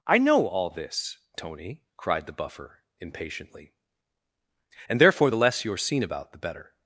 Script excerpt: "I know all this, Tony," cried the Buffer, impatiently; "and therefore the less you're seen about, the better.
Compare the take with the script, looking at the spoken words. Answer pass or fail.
pass